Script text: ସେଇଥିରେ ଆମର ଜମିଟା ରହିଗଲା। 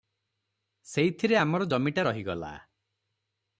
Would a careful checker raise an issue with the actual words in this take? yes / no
no